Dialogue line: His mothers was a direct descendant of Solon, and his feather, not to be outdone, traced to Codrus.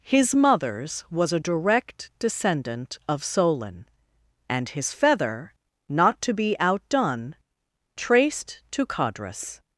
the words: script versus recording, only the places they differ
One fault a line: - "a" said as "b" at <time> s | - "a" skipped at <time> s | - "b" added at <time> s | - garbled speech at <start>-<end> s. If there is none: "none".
none